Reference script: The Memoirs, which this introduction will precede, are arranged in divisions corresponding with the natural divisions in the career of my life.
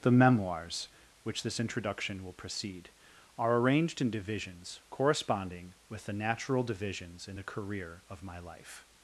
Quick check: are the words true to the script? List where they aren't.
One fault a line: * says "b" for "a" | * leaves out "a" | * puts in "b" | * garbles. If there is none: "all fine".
all fine